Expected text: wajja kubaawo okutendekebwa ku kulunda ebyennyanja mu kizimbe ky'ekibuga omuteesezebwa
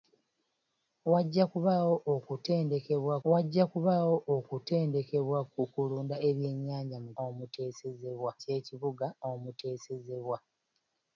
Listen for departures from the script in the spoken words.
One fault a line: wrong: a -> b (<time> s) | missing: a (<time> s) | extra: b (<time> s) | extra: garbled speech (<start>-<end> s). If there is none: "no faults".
extra: wajja kubaawo okutendekebwa (3.3 s)
wrong: kizimbe -> omuteesezebwa (7.2 s)